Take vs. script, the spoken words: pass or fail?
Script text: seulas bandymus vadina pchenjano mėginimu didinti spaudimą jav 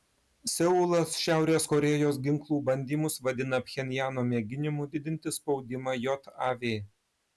fail